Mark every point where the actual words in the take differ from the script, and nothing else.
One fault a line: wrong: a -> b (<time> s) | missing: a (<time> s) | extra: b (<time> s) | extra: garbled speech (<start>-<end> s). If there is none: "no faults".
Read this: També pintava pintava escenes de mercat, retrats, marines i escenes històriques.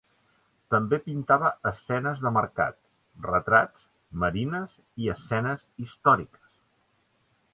missing: pintava (1.5 s)